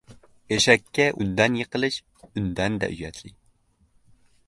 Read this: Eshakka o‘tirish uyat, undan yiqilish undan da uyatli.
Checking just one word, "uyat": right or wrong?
wrong